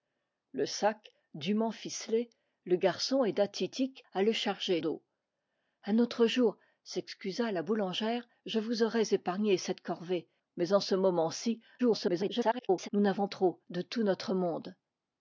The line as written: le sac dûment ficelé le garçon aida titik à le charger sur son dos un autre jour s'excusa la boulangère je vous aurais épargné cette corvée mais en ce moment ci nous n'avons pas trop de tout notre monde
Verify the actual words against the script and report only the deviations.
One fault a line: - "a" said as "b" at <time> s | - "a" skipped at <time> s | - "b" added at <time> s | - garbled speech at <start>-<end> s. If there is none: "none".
- "sur son" skipped at 4.8 s
- garbled speech at 11.8-12.9 s
- "pas" skipped at 13.3 s